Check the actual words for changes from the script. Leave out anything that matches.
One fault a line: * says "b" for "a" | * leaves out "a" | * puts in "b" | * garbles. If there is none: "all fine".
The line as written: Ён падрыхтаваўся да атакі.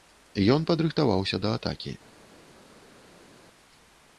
all fine